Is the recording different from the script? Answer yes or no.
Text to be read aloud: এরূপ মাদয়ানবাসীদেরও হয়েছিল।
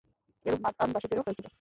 no